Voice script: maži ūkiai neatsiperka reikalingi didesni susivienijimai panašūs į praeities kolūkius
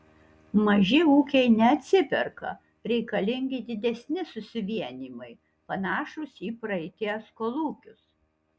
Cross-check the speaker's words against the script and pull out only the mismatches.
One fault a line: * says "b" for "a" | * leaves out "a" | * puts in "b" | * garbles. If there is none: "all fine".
all fine